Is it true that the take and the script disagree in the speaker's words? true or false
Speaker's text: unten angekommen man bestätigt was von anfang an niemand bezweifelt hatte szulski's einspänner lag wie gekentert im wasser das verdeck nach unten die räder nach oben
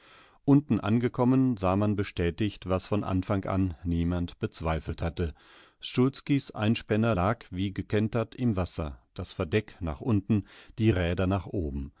true